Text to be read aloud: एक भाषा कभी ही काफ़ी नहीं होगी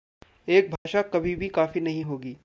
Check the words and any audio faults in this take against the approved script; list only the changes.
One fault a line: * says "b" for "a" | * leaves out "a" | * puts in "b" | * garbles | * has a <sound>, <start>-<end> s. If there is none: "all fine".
* has a dropout, 0.8-0.9 s
* says "भी" for "ही"